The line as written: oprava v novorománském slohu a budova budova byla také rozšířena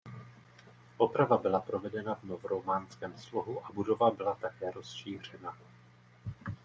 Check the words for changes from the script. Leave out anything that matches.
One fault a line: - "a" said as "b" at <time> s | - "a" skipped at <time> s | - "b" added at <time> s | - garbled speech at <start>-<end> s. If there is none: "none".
- "byla provedena" added at 1.4 s
- "budova" skipped at 4.1 s